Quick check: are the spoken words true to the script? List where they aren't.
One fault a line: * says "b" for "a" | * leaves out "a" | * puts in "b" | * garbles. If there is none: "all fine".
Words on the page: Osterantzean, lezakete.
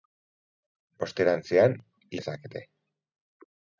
all fine